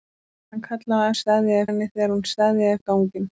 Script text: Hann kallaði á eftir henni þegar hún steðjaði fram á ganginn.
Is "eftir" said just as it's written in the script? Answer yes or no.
no